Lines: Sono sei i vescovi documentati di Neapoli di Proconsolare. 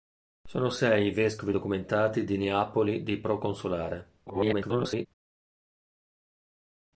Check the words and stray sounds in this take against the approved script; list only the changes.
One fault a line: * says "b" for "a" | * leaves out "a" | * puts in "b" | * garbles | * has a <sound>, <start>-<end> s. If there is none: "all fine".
* garbles